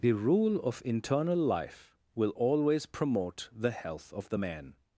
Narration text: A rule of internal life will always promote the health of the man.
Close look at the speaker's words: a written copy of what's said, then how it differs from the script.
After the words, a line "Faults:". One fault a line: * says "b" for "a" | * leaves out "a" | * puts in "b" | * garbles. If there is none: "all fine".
The rule of internal life will always promote the health of the man.
Faults:
* says "The" for "A"